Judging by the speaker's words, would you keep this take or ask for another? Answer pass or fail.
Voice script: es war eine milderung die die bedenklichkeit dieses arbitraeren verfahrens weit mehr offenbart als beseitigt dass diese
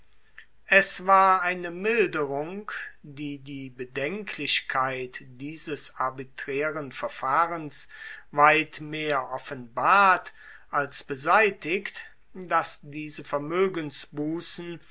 pass